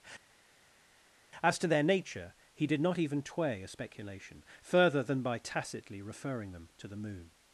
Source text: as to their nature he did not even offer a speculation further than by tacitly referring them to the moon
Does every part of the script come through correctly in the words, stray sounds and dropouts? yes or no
no